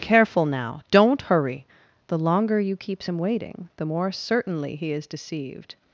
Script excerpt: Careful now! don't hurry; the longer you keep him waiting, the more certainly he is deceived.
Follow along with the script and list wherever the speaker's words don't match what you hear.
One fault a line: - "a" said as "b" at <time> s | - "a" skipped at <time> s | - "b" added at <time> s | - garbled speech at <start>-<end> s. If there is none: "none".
- "keep" said as "keeps" at 2.8 s